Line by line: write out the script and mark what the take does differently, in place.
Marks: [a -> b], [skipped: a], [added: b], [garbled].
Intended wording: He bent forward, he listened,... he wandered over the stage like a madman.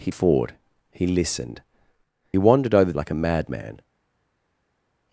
He [skipped: bent] forward, he listened,... [skipped: he] wandered over [skipped: the stage] like a madman.